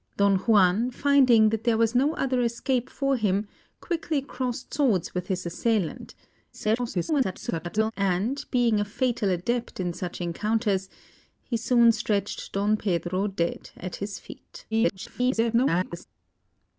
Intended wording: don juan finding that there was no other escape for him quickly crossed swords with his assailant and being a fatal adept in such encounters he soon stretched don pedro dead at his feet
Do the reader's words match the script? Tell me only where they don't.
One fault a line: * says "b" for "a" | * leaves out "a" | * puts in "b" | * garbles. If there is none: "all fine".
* garbles
* garbles